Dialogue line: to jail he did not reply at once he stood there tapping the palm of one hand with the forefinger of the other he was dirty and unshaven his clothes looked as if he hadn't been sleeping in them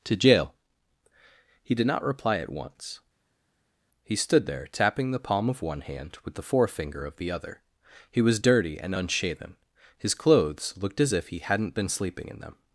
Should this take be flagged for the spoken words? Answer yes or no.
no